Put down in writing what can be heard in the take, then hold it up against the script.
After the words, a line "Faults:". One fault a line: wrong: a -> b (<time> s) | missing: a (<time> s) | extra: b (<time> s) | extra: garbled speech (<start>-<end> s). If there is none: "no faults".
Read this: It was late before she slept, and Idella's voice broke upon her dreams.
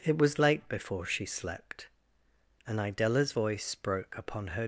It was late before she slept, and Idella's voice broke upon her.
Faults:
missing: dreams (4.6 s)